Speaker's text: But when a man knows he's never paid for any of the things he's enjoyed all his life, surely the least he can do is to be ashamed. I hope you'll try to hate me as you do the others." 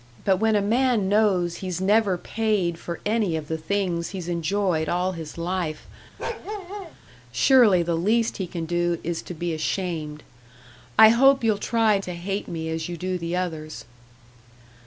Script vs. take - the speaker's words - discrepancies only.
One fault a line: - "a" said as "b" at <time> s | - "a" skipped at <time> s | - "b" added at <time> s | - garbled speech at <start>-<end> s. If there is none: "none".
none